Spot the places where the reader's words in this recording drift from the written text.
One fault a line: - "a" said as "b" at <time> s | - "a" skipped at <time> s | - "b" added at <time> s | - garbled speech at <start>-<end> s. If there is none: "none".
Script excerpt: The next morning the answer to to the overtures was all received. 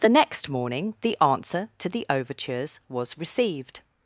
- "to" skipped at 1.9 s
- "all" skipped at 3.2 s